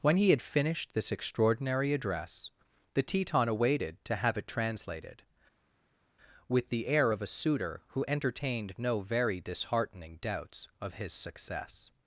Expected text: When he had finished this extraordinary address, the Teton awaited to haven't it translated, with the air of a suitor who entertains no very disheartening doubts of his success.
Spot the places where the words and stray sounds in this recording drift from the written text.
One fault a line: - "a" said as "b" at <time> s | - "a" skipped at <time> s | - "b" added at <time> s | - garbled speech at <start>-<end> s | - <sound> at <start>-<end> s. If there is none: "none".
- "haven't" said as "have" at 4.2 s
- "entertains" said as "entertained" at 8.1 s